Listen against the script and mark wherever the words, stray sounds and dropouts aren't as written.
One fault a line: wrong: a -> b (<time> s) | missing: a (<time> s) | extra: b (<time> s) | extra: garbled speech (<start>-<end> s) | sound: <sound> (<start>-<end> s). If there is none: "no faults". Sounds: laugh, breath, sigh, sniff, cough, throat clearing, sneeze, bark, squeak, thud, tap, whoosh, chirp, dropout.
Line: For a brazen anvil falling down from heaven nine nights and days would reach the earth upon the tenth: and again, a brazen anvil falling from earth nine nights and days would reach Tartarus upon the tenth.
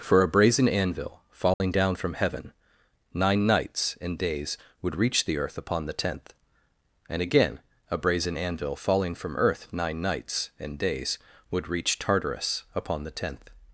sound: dropout (1.5-1.6 s)